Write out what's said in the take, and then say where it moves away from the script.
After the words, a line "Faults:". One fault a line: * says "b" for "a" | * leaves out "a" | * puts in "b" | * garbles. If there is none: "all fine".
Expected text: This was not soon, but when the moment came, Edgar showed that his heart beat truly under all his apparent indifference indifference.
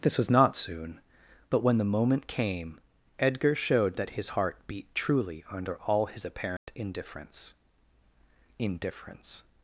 This was not soon, but when the moment came, Edgar showed that his heart beat truly under all his apparent indifference indifference.
Faults:
all fine